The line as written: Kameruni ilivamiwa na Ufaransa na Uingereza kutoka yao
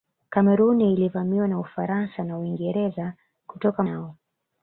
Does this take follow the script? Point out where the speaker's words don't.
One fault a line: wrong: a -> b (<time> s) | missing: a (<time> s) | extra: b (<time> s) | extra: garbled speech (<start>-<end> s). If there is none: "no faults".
no faults